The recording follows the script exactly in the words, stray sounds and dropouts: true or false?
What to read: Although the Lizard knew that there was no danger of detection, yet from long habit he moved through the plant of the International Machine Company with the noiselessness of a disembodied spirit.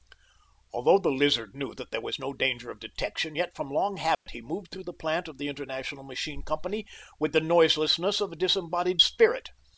false